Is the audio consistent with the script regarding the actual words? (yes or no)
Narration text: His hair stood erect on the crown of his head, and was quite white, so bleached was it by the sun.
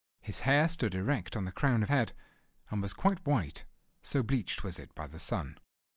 no